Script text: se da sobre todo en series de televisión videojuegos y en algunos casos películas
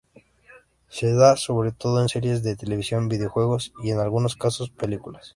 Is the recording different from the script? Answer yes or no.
no